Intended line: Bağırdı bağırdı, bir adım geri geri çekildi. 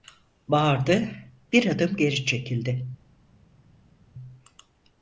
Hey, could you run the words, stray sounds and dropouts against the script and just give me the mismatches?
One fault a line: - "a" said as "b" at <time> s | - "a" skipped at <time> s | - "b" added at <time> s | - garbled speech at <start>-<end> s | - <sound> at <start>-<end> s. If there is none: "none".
- "bağırdı" skipped at 1.1 s
- "geri" skipped at 2.2 s